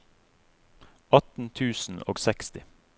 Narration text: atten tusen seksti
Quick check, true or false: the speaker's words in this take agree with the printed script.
false